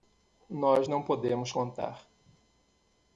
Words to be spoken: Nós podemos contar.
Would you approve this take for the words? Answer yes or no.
no